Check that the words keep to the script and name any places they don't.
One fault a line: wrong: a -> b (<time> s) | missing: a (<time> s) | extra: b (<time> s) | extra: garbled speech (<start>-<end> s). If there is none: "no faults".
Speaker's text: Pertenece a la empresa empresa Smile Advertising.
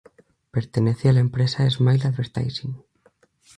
missing: empresa (1.7 s)